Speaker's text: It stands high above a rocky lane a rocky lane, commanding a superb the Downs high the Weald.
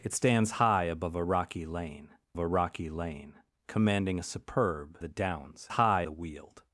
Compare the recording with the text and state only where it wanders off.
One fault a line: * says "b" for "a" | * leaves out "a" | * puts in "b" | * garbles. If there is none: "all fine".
all fine